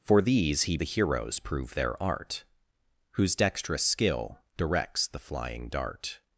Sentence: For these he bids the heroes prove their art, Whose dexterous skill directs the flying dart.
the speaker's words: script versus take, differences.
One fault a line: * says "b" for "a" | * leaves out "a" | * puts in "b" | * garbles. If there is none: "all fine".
* leaves out "bids"